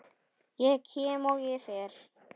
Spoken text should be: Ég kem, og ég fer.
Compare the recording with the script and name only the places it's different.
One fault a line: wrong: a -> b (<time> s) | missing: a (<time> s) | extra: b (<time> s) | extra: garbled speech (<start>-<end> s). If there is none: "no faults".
no faults